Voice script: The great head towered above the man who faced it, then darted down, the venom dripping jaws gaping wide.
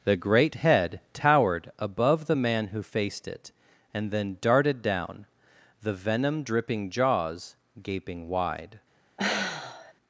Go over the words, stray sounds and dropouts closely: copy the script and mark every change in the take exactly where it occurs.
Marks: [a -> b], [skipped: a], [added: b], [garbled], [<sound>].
The great head towered above the man who faced it, [added: and] then darted down, the venom dripping jaws gaping wide. [sigh]